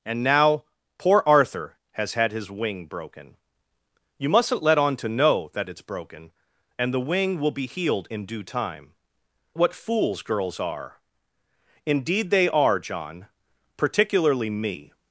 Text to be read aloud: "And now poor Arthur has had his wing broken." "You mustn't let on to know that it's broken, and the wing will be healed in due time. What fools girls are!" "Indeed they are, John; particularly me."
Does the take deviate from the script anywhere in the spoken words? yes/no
no